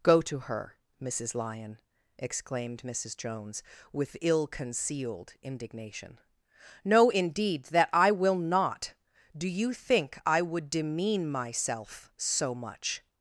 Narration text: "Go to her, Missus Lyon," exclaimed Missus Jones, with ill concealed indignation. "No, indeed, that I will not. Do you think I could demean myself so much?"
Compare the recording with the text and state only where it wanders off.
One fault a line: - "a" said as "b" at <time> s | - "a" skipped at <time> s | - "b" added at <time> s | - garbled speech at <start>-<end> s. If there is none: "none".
- "could" said as "would" at 10.4 s